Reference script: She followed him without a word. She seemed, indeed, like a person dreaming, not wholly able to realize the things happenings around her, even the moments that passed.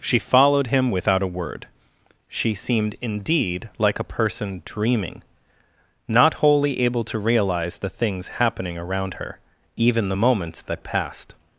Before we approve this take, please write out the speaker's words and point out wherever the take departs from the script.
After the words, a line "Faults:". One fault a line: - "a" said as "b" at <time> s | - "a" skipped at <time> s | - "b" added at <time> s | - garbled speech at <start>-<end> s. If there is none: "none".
She followed him without a word. She seemed, indeed, like a person dreaming, not wholly able to realize the things happening around her, even the moments that passed.
Faults:
- "happenings" said as "happening" at 8.4 s